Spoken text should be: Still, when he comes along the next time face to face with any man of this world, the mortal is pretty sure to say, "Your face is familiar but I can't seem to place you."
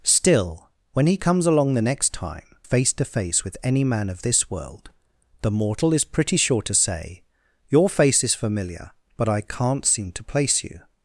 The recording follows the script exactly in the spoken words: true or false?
true